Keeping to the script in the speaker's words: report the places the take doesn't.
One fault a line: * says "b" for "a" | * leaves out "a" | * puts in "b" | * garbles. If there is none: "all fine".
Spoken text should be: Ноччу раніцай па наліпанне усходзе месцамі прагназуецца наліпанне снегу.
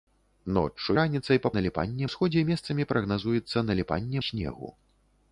all fine